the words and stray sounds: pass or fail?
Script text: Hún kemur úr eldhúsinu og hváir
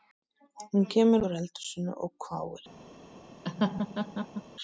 fail